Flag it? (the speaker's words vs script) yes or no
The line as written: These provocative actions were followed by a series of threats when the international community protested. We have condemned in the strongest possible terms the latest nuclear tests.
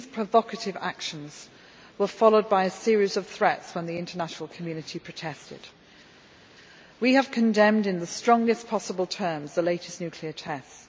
no